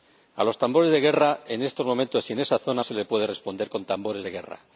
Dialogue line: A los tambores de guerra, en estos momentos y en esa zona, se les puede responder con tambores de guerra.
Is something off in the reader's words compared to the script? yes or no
no